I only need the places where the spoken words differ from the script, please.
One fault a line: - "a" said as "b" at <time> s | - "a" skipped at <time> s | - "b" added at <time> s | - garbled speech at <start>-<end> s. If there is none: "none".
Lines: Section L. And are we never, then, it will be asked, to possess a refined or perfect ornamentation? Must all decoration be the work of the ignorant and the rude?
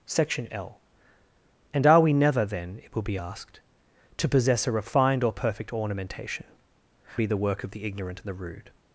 - "Must all decoration" skipped at 6.5 s